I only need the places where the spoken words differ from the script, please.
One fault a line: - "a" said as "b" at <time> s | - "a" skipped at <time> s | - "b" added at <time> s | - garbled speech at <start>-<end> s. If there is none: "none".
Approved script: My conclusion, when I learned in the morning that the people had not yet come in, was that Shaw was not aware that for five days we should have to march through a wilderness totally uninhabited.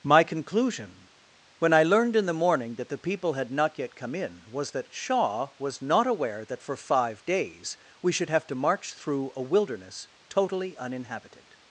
none